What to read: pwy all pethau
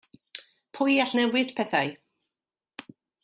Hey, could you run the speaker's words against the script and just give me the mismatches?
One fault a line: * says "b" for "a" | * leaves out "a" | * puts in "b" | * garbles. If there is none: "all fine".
* puts in "newid"